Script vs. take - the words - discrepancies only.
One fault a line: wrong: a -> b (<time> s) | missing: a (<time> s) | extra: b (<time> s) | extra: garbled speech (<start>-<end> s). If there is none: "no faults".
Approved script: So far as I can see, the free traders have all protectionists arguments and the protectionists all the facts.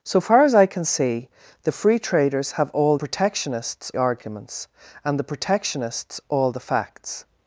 no faults